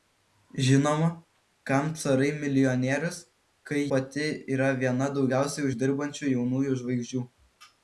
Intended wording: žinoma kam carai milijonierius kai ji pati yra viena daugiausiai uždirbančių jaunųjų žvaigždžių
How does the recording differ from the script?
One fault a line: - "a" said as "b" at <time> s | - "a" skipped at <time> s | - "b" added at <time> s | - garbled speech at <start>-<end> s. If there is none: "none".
- "ji" skipped at 3.8 s